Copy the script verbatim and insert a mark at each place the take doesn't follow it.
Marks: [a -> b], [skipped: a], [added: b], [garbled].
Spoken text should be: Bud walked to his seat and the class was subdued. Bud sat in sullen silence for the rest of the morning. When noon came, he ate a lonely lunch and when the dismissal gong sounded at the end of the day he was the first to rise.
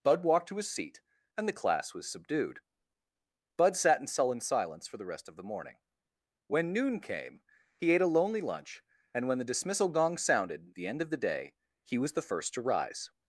Bud walked to his seat and the class was subdued. Bud sat in sullen silence for the rest of the morning. When noon came, he ate a lonely lunch and when the dismissal gong sounded [skipped: at] the end of the day he was the first to rise.